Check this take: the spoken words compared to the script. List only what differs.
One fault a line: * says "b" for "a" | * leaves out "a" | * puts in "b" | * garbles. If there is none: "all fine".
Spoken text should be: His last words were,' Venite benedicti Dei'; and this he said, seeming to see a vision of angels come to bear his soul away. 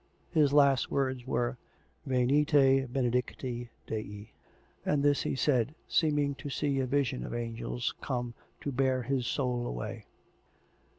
all fine